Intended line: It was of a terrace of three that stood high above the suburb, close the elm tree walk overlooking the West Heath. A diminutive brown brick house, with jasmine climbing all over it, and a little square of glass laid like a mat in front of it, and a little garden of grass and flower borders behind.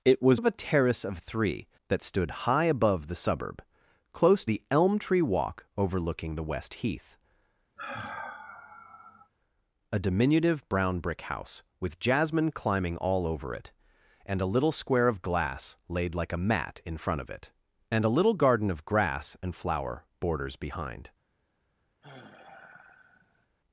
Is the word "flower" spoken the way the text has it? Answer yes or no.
yes